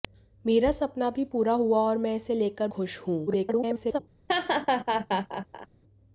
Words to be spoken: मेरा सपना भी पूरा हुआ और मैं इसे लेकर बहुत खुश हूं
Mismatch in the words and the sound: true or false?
true